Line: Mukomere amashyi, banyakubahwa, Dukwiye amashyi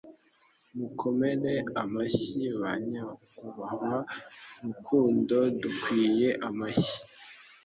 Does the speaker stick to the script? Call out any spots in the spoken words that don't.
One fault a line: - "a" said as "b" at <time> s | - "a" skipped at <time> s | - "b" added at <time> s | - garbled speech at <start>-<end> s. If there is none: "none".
- "Rukundo" added at 4.6 s